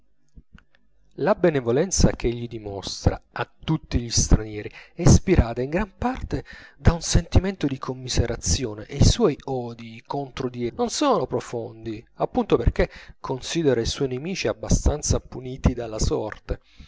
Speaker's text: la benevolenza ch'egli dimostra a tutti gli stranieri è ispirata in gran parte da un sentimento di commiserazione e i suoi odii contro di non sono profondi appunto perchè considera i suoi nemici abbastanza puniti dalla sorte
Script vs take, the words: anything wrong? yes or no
no